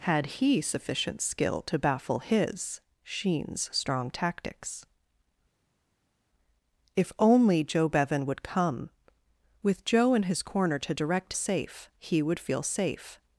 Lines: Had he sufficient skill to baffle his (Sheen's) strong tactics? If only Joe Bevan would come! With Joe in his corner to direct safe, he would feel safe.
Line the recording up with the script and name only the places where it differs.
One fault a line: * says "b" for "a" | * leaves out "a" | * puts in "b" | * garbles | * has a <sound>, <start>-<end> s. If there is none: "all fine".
all fine